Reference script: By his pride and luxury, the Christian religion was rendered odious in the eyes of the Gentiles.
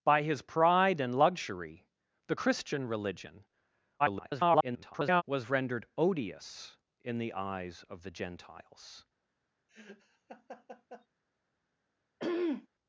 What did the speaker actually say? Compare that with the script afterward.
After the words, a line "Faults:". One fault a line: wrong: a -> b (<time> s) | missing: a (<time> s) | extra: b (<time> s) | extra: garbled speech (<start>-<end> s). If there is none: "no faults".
By his pride and luxury, the Christian religion [garbled] was rendered odious in the eyes of the Gentiles.
Faults:
extra: garbled speech (4.0-5.2 s)